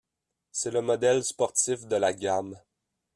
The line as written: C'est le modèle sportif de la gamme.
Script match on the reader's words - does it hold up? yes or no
yes